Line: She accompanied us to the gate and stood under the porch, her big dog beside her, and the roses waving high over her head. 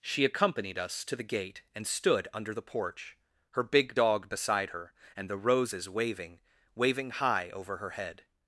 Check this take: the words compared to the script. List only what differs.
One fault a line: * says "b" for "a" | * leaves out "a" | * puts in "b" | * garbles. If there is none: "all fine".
* puts in "waving"